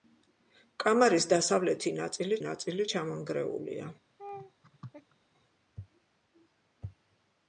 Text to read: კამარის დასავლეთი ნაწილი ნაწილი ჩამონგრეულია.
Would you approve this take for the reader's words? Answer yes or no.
yes